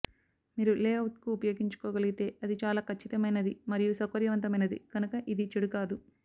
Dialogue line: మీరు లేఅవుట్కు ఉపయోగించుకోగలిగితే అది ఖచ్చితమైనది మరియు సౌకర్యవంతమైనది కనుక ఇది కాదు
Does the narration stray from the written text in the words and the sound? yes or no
yes